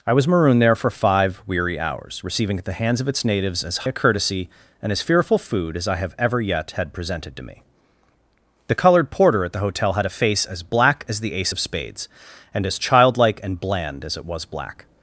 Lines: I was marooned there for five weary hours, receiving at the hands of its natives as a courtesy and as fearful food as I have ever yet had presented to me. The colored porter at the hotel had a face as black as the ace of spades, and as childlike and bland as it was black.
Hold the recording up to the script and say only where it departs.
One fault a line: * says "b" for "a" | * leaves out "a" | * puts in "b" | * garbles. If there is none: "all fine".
all fine